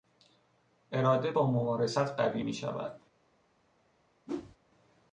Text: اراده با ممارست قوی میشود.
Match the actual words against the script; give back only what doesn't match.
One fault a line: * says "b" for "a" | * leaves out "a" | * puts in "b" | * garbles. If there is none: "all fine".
all fine